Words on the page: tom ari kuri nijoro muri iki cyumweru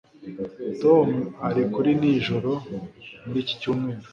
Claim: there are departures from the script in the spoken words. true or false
false